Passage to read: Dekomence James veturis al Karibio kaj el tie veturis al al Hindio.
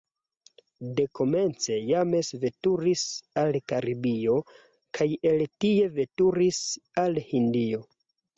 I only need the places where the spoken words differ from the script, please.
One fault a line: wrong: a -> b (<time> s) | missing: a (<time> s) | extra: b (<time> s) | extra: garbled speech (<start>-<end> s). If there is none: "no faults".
missing: al (7.2 s)